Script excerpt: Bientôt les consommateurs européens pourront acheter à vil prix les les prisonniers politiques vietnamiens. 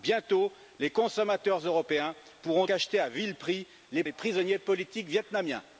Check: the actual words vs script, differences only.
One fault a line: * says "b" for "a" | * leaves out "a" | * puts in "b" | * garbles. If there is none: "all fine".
all fine